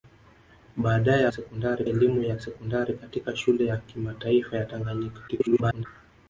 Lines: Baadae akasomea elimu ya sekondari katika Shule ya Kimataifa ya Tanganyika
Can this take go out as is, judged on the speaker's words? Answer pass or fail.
fail